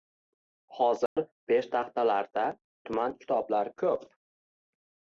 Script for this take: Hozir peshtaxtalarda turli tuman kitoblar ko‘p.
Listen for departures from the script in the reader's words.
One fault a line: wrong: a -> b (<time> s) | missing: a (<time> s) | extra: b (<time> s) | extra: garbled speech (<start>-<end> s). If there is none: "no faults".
missing: turli (2.4 s)